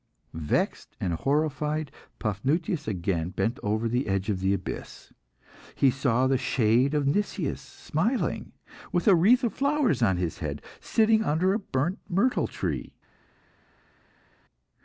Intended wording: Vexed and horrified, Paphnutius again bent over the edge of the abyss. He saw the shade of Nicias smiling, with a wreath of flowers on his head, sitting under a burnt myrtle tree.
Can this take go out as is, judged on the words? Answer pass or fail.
pass